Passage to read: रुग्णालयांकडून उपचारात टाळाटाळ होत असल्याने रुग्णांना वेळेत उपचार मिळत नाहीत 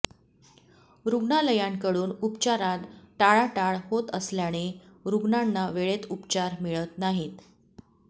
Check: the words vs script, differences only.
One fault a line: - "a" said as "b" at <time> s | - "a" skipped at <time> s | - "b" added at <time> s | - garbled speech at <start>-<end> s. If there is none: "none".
none